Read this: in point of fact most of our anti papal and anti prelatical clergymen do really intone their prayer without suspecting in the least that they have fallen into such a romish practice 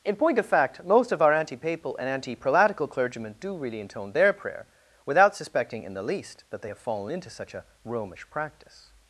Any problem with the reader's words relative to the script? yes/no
no